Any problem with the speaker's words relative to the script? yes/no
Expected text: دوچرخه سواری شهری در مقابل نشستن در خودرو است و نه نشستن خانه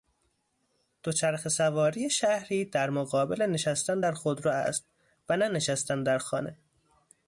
yes